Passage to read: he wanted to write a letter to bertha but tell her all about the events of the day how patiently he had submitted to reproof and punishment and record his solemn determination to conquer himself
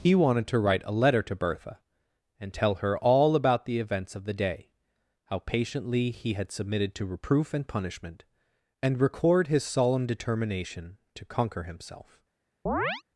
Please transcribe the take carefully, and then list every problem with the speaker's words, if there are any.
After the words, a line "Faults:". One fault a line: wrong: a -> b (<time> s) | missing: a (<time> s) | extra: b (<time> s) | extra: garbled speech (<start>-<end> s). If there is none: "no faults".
he wanted to write a letter to bertha and tell her all about the events of the day how patiently he had submitted to reproof and punishment and record his solemn determination to conquer himself
Faults:
wrong: but -> and (2.4 s)